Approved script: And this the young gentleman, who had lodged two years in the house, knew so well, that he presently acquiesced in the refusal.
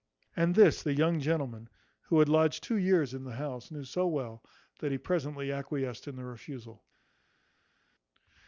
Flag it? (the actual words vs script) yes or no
no